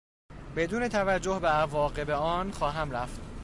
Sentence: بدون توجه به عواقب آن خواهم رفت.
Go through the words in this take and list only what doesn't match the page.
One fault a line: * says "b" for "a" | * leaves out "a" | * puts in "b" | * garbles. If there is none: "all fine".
all fine